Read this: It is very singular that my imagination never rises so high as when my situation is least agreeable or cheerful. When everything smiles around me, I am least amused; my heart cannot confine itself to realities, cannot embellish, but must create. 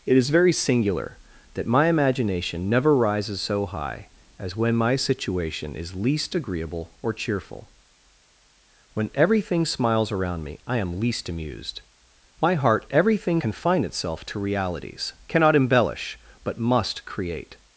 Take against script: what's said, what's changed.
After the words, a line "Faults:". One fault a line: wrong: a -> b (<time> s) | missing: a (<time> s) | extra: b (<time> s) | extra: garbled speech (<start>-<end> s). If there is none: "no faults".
It is very singular that my imagination never rises so high as when my situation is least agreeable or cheerful. When everything smiles around me, I am least amused; my heart everything confine itself to realities, cannot embellish, but must create.
Faults:
wrong: cannot -> everything (12.9 s)